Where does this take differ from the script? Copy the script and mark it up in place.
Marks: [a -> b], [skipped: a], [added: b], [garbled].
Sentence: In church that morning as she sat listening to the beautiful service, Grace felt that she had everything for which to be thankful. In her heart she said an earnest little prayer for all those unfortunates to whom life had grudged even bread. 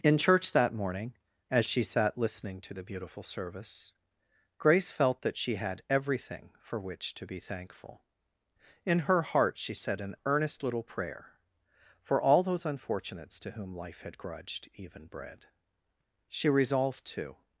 In church that morning as she sat listening to the beautiful service, Grace felt that she had everything for which to be thankful. In her heart she said an earnest little prayer for all those unfortunates to whom life had grudged even bread. [added: She resolved to]